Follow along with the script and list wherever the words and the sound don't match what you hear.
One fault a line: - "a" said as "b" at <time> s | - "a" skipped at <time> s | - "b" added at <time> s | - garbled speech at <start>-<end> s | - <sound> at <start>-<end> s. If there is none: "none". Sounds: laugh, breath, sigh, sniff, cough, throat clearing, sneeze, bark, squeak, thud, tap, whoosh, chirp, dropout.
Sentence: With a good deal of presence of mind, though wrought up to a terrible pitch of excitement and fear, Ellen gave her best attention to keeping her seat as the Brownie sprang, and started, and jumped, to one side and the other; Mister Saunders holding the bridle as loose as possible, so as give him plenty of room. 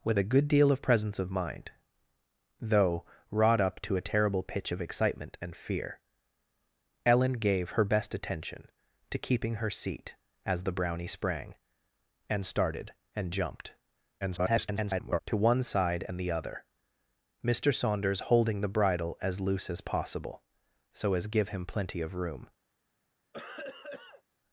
- garbled speech at 14.2-15.2 s
- cough at 23.3-24.2 s